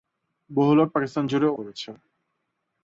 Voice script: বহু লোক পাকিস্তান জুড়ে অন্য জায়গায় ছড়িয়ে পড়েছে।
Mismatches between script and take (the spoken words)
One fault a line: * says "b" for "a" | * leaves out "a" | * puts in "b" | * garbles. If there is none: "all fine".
* leaves out "অন্য জায়গায় ছড়িয়ে"